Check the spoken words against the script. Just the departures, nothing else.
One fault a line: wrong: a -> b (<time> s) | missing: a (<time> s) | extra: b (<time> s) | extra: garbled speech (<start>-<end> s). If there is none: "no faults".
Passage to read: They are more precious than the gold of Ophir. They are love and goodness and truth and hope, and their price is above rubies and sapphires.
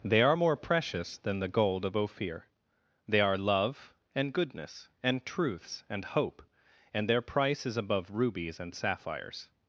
wrong: truth -> truths (5.3 s)